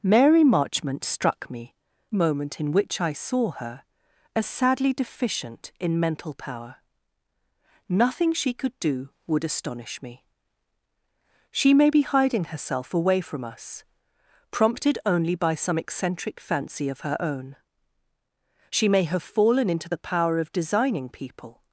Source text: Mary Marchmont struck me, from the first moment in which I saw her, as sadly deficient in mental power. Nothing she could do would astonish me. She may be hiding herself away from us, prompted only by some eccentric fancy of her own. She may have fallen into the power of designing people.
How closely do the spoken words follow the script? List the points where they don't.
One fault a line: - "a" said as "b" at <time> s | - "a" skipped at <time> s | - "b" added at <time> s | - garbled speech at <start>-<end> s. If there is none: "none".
- "from the first" skipped at 1.8 s